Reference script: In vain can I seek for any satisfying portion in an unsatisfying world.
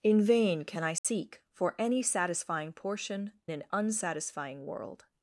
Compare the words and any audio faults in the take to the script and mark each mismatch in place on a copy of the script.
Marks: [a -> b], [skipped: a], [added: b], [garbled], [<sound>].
In vain can I seek [dropout] for any satisfying portion [skipped: in] an unsatisfying world.